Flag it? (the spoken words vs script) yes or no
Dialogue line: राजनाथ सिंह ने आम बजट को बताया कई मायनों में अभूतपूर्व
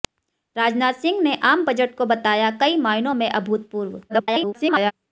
yes